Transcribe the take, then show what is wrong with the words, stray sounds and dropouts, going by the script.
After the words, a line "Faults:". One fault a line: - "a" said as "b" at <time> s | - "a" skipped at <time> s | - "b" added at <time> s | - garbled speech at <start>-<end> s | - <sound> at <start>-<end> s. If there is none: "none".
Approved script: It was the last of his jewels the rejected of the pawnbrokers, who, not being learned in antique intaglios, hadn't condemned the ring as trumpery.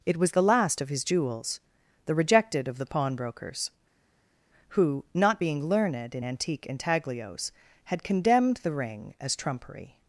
It was the last of his jewels the rejected of the pawnbrokers, who, not being learned in antique intaglios, had condemned the ring as trumpery.
Faults:
- "hadn't" said as "had" at 7.9 s